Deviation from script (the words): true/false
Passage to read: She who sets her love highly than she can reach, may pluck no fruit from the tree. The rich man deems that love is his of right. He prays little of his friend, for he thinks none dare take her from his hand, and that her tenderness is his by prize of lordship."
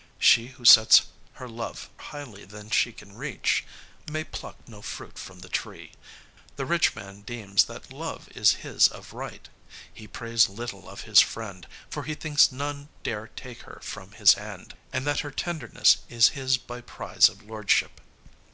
false